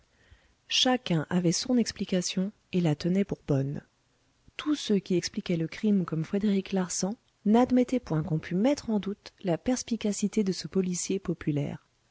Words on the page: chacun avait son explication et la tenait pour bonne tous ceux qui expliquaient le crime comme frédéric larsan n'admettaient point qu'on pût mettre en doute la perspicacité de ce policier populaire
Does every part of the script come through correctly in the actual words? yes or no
yes